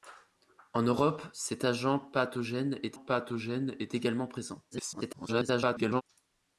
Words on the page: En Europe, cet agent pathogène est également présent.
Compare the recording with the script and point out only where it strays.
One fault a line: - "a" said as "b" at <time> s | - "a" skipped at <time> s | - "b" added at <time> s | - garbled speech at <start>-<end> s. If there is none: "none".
- "pathogène est" added at 2.9 s
- garbled speech at 4.7-6.0 s